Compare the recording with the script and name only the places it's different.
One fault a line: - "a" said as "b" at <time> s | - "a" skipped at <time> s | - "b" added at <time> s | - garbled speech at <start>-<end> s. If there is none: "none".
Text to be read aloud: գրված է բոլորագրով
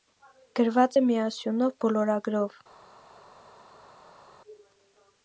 - "միասյունով" added at 1.1 s